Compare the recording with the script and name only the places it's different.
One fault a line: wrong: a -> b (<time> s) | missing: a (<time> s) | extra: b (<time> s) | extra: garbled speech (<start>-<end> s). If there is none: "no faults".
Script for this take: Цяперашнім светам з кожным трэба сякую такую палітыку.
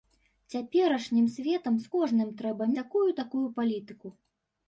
no faults